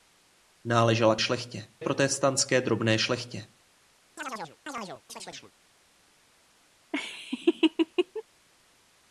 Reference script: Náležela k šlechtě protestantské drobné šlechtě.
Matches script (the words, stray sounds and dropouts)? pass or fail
fail